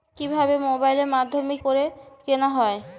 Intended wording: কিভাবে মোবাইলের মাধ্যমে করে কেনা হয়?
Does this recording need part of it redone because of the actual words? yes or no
no